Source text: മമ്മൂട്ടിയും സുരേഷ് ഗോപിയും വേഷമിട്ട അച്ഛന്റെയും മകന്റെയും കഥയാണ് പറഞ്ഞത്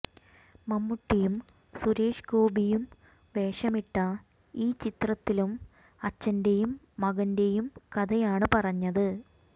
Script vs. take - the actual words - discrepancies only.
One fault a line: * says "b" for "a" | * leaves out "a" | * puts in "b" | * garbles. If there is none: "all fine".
* puts in "ഈ ചിത്രത്തിലും"